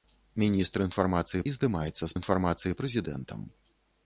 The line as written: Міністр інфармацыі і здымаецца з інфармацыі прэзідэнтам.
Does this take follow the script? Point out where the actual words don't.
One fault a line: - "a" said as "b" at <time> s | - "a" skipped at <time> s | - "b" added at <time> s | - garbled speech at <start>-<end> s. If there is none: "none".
none